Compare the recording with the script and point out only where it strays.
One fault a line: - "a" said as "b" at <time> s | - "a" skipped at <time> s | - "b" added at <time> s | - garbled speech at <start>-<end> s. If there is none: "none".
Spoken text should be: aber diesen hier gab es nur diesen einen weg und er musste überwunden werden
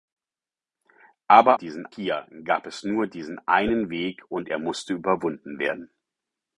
none